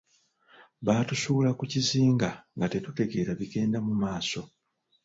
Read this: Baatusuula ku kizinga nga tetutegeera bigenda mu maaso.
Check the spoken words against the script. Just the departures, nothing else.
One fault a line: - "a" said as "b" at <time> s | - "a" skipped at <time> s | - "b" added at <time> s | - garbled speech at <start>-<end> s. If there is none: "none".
none